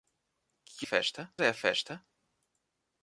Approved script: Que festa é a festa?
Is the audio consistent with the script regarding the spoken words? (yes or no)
yes